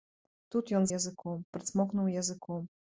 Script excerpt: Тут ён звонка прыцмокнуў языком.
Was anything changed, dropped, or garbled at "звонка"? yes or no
yes